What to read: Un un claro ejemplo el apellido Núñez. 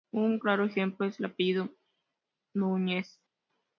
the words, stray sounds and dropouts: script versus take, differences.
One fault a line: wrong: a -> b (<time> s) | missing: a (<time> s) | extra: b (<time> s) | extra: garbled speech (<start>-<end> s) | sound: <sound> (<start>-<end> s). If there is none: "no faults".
missing: un (0.4 s)
extra: es (1.0 s)